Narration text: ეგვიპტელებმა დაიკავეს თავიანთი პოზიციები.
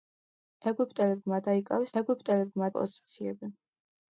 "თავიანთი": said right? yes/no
no